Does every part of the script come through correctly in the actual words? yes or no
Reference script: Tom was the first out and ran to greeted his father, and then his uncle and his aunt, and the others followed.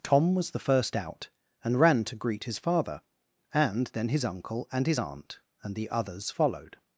no